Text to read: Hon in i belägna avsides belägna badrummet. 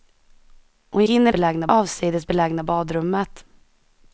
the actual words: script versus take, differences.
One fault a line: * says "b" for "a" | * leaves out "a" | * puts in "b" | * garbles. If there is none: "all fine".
all fine